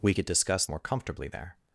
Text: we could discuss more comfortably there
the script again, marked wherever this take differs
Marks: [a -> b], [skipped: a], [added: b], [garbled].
we could discuss more comfortably there